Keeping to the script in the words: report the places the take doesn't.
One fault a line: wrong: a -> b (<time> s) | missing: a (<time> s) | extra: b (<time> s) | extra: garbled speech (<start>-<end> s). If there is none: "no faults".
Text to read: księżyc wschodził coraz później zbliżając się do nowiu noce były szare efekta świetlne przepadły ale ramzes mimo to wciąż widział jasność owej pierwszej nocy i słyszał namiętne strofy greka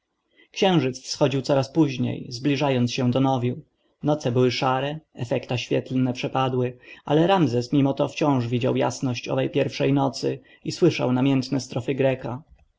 no faults